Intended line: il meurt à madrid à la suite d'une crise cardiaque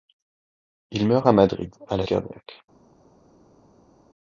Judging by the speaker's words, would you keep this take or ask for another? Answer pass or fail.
fail